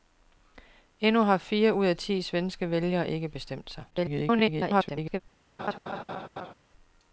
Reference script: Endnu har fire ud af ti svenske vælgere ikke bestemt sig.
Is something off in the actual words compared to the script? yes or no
yes